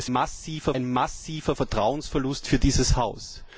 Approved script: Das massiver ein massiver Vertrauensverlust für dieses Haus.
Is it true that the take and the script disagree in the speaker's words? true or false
false